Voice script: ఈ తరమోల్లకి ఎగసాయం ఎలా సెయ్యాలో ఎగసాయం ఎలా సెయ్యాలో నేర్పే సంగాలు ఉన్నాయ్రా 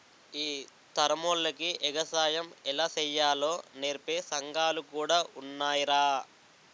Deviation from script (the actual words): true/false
true